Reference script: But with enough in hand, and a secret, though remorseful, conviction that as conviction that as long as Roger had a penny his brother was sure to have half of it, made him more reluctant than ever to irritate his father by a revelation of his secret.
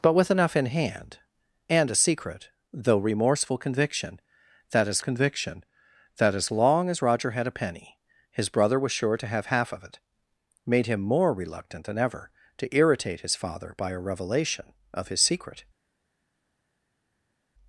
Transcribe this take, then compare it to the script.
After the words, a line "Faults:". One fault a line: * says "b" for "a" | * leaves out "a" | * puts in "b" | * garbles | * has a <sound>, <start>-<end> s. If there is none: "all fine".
But with enough in hand, and a secret, though remorseful, conviction that as conviction that as long as Roger had a penny his brother was sure to have half of it, made him more reluctant than ever to irritate his father by a revelation of his secret.
Faults:
all fine